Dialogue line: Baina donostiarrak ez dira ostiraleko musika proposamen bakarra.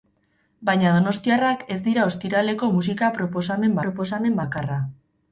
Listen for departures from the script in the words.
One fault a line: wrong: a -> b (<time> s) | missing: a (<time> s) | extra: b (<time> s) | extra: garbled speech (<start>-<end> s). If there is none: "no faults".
extra: proposamen (3.9 s)